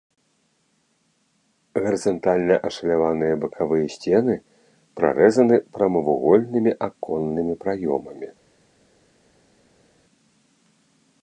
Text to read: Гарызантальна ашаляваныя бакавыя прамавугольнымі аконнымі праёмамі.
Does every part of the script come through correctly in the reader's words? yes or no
no